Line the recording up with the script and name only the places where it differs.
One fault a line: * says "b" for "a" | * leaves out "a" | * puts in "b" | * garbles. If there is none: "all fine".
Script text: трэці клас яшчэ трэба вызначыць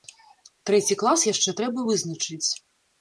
all fine